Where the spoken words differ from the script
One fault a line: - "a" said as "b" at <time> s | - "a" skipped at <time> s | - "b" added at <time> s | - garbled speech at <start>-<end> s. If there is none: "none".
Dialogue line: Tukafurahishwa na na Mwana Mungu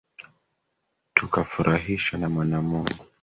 - "na" skipped at 2.3 s